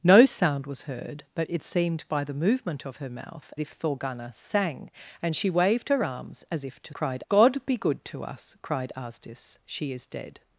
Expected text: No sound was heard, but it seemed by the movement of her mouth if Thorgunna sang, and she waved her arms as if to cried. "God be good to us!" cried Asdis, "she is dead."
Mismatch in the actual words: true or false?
false